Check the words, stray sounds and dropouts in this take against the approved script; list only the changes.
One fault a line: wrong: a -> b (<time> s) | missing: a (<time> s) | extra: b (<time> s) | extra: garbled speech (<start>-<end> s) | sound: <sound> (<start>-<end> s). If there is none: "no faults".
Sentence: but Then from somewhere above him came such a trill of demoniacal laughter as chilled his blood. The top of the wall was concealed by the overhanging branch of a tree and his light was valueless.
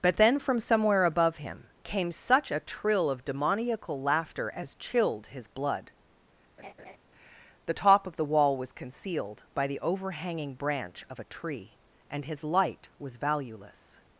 sound: laugh (6.6-7.0 s)